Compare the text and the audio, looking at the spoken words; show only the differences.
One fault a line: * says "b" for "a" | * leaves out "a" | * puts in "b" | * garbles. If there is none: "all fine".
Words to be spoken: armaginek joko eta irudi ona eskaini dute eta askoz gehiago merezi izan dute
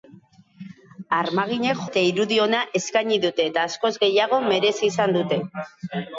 * leaves out "joko"